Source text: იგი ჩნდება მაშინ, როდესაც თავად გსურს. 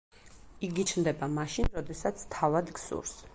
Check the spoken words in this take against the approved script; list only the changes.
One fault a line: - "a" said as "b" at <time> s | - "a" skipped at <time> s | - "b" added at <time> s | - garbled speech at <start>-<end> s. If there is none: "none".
none